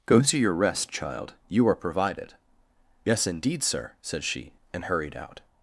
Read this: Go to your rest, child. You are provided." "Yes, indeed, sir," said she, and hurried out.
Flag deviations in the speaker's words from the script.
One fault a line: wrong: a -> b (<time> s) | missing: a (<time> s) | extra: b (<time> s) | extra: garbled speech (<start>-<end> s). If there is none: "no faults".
no faults